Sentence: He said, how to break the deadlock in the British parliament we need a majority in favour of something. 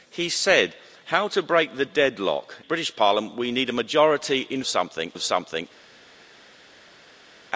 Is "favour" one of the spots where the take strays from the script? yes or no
yes